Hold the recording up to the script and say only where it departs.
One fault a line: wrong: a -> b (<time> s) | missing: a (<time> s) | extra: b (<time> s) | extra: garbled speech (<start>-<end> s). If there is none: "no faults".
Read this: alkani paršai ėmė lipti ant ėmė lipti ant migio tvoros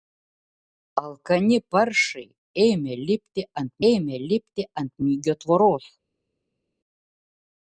no faults